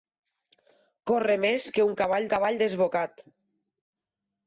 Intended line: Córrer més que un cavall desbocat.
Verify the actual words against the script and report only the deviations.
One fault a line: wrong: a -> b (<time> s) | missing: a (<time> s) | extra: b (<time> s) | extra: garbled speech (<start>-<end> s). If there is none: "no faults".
extra: cavall (2.3 s)